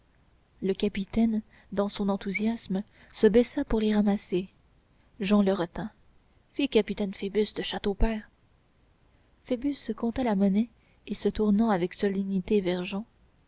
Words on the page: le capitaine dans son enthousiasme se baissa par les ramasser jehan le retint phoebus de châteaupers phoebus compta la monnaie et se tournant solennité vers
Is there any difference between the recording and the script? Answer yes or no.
yes